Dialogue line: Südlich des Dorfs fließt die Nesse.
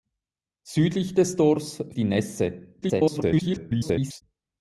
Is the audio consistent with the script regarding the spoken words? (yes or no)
no